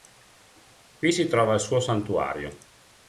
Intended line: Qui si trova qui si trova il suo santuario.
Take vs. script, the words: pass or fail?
fail